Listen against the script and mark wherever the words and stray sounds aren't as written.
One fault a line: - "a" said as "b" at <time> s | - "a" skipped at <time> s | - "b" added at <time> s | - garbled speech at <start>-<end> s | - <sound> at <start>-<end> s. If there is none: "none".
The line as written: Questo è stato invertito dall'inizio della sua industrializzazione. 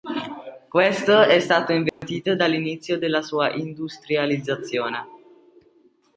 - dropout at 1.9-2.0 s